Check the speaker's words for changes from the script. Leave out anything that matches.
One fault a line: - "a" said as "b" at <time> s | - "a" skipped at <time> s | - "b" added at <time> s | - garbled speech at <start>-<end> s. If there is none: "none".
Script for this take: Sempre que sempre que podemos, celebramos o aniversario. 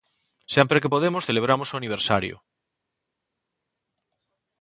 - "sempre que" skipped at 0.9 s